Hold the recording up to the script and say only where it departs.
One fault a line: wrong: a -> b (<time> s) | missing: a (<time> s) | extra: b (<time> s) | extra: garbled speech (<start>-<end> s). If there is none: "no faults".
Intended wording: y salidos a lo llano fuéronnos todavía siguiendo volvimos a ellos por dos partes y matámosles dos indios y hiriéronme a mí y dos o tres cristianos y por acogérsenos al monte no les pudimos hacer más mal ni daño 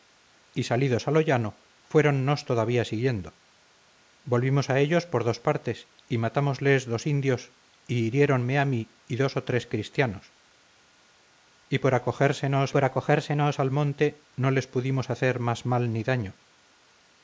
extra: por acogérsenos (12.7 s)